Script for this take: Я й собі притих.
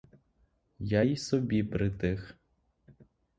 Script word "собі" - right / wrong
right